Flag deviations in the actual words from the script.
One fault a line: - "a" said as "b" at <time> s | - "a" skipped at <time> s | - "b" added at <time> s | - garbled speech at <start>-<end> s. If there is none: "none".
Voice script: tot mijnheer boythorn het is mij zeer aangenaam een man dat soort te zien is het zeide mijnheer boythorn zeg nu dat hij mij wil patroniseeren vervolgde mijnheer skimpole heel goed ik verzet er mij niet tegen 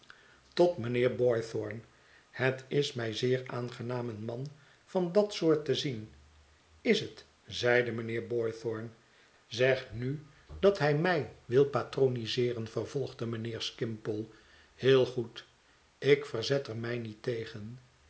- "van" added at 4.8 s